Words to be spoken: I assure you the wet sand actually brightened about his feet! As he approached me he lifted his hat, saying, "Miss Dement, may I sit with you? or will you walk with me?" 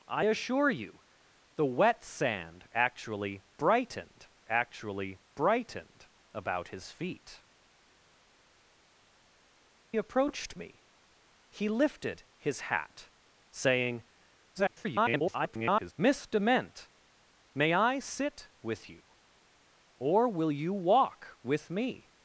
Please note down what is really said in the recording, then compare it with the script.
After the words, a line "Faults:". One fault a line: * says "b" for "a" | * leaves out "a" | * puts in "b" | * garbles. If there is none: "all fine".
I assure you the wet sand actually brightened actually brightened about his feet! Approached me he lifted his hat, saying, [garbled] "Miss Dement, may I sit with you? or will you walk with me?"
Faults:
* puts in "actually brightened"
* leaves out "As he"
* garbles